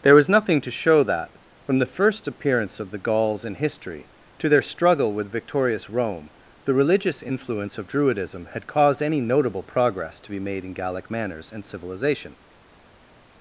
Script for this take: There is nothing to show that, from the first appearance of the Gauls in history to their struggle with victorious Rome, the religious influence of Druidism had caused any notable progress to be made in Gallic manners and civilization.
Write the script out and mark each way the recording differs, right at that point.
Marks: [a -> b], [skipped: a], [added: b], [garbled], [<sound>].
There [is -> was] nothing to show that, from the first appearance of the Gauls in history to their struggle with victorious Rome, the religious influence of Druidism had caused any notable progress to be made in Gallic manners and civilization.